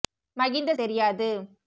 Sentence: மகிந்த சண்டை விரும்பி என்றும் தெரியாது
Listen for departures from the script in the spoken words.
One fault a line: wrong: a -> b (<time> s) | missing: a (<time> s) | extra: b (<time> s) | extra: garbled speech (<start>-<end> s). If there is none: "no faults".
missing: சண்டை விரும்பி என்றும் (0.7 s)